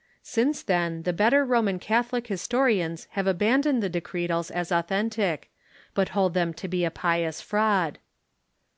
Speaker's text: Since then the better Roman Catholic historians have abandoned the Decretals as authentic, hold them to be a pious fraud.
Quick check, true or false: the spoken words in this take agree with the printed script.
false